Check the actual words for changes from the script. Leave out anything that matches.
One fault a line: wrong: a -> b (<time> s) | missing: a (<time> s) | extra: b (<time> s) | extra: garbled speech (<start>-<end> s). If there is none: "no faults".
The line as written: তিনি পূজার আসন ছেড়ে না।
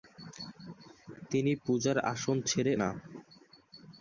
no faults